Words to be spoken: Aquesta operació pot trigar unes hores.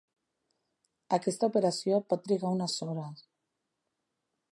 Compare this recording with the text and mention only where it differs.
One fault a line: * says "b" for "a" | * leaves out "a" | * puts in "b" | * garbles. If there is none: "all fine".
all fine